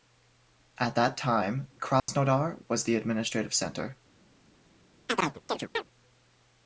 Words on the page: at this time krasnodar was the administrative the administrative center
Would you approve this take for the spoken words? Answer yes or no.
no